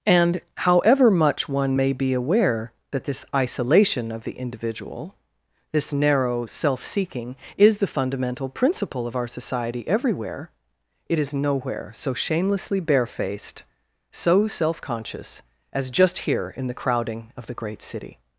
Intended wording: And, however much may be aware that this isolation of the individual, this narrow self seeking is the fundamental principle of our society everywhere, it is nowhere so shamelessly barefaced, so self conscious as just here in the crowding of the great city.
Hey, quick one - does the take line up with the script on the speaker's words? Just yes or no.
no